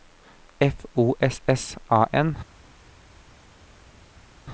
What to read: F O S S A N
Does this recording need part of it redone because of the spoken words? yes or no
no